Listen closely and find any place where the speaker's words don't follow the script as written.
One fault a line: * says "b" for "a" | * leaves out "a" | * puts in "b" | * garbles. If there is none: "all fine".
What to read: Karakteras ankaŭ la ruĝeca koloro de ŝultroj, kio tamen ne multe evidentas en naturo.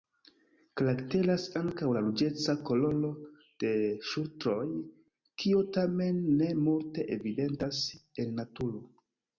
all fine